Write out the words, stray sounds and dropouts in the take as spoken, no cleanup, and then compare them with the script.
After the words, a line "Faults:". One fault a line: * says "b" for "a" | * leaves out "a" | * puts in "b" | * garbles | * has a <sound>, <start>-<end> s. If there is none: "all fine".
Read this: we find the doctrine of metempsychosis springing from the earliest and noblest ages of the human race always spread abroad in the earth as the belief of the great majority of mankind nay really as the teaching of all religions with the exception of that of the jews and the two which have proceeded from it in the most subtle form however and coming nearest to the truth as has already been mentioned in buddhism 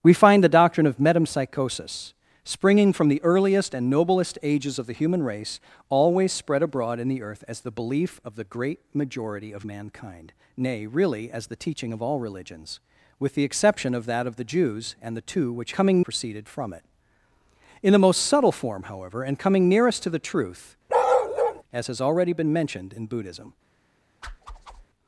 we find the doctrine of metempsychosis springing from the earliest and noblest ages of the human race always spread abroad in the earth as the belief of the great majority of mankind nay really as the teaching of all religions with the exception of that of the jews and the two which coming proceeded from it in the most subtle form however and coming nearest to the truth as has already been mentioned in buddhism
Faults:
* says "coming" for "have"
* has a bark, 20.9-21.6 s
* has a whoosh, 24.2-24.9 s